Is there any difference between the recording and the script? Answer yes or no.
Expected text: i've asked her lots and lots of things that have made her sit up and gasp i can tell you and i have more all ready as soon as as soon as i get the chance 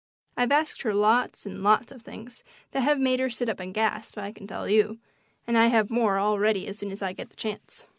yes